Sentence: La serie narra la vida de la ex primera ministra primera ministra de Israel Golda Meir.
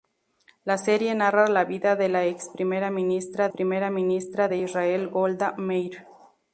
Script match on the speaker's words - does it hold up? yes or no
yes